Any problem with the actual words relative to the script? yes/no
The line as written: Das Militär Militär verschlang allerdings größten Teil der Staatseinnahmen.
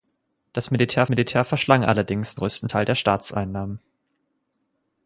no